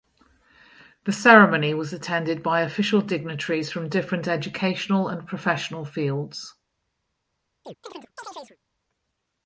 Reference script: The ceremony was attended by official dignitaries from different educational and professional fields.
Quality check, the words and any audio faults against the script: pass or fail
fail